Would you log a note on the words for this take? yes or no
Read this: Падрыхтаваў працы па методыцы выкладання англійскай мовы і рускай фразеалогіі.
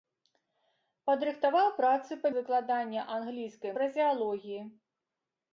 yes